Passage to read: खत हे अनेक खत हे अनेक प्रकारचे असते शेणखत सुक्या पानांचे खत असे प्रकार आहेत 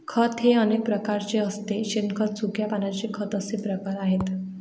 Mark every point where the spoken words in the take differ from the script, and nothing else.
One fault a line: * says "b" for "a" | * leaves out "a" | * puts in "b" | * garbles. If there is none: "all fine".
* leaves out "खत हे अनेक"